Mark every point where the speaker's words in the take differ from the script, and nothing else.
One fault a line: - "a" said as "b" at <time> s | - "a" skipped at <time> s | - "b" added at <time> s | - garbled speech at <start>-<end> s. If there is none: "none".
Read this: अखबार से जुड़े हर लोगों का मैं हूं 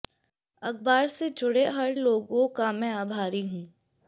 - "आभारी" added at 2.9 s